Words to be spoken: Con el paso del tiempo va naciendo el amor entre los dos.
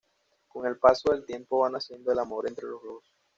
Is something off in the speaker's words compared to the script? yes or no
no